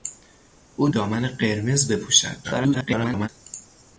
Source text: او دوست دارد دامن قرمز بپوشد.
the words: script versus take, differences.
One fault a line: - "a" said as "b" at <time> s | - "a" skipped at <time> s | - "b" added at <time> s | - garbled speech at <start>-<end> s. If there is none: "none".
- "دوست دارد" skipped at 0.9 s
- garbled speech at 2.4-3.3 s